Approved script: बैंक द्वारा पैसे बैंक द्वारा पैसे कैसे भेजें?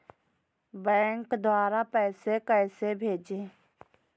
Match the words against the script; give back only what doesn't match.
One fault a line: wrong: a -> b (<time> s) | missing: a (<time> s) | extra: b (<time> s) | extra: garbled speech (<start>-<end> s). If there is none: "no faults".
missing: बैंक द्वारा पैसे (2.4 s)